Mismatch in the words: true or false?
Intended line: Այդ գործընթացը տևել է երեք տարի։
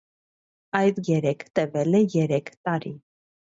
true